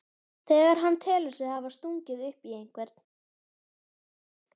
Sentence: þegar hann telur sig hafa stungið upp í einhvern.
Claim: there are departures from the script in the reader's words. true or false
false